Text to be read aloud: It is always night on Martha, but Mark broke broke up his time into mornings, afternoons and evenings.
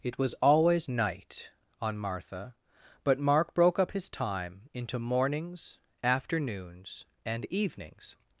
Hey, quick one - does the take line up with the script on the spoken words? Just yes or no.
no